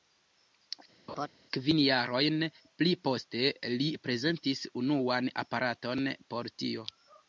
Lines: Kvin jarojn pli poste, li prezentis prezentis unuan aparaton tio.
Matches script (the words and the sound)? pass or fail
fail